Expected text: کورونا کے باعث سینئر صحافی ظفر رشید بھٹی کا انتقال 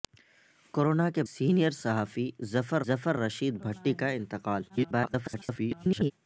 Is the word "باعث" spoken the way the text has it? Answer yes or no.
no